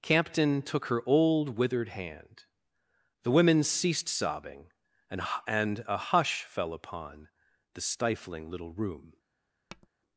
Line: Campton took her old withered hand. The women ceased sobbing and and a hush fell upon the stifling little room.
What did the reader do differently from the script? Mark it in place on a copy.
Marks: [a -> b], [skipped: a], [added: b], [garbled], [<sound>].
Campton took her old withered hand. The women ceased sobbing and and a hush fell upon the stifling little room. [tap]